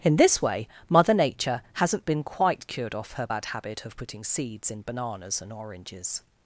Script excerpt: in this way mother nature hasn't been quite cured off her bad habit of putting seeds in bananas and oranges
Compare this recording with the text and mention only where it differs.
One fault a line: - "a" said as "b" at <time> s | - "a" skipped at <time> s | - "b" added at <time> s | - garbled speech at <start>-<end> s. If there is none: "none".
none